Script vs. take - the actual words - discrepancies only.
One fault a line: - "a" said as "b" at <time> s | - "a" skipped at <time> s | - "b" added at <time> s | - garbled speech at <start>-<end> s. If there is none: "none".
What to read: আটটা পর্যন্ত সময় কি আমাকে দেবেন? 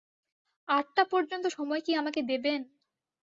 none